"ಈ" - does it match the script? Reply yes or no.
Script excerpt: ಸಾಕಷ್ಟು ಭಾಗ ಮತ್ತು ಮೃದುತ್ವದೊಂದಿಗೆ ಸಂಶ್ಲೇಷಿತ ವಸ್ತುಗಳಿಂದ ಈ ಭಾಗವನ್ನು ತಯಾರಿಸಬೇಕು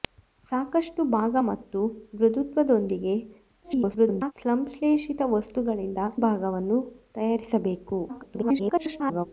no